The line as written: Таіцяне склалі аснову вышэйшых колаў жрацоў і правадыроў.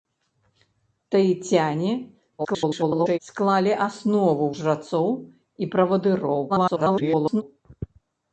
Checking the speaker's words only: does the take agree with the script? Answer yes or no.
no